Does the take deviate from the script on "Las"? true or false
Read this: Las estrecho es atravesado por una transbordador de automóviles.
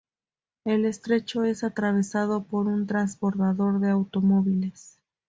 true